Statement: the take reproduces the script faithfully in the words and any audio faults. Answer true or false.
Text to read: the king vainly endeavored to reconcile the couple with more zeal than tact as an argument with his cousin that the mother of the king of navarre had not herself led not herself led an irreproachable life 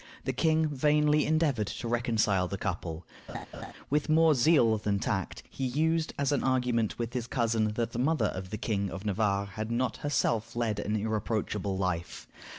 false